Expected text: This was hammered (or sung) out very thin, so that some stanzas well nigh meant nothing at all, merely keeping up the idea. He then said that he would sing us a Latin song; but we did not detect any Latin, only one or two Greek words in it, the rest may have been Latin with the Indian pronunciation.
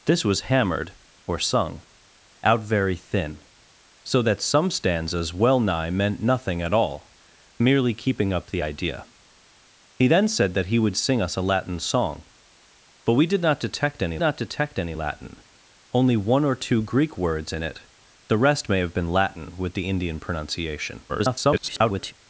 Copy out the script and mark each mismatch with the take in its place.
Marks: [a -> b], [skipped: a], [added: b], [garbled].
This was hammered (or sung) out very thin, so that some stanzas well nigh meant nothing at all, merely keeping up the idea. He then said that he would sing us a Latin song; but we did not detect any [added: not detect any] Latin, only one or two Greek words in it, the rest may have been Latin with the Indian pronunciation. [garbled]